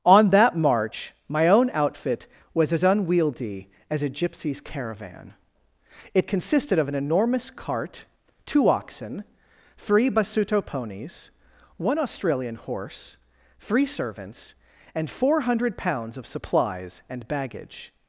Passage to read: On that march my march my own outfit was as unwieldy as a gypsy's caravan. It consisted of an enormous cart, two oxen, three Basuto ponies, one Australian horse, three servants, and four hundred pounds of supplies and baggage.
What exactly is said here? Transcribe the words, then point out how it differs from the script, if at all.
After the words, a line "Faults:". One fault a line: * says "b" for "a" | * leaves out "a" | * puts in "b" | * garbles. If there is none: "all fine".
On that march my own outfit was as unwieldy as a gypsy's caravan. It consisted of an enormous cart, two oxen, three Basuto ponies, one Australian horse, three servants, and four hundred pounds of supplies and baggage.
Faults:
* leaves out "march my"